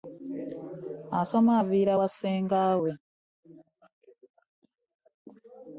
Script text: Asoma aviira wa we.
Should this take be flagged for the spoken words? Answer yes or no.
yes